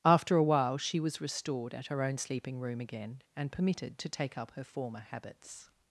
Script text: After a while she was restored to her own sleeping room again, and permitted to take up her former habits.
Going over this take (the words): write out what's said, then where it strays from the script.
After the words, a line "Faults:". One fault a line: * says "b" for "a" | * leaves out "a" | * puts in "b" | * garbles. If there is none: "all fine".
After a while she was restored at her own sleeping room again, and permitted to take up her former habits.
Faults:
* says "at" for "to"